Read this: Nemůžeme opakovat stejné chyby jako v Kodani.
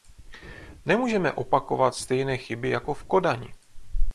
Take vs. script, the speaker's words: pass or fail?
pass